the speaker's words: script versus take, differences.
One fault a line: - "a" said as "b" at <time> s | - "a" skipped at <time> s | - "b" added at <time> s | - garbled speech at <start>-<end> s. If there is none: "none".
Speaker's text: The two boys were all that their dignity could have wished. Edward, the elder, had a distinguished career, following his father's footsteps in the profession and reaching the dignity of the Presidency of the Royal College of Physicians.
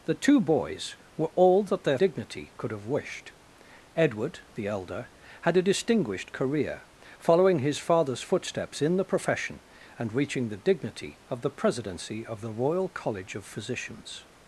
none